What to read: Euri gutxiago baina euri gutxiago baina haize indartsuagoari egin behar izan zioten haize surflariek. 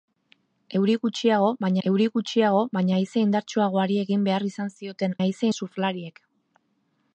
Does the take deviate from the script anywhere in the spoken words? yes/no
no